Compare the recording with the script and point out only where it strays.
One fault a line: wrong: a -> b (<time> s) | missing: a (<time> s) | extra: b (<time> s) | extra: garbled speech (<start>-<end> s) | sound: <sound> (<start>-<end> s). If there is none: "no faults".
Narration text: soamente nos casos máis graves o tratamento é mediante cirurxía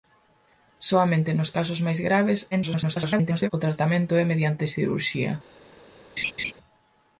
extra: garbled speech (2.5-3.5 s)
sound: laugh (6.2-6.5 s)